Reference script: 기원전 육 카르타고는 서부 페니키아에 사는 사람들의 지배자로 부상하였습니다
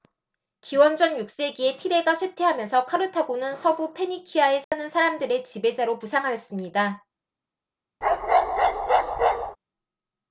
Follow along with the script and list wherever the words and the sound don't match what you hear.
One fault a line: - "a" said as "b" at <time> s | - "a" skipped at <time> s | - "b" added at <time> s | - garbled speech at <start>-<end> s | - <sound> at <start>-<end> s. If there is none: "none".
- "세기에 티레가 쇠퇴하면서" added at 1.3 s
- dropout at 4.6-4.7 s
- bark at 8.0-9.6 s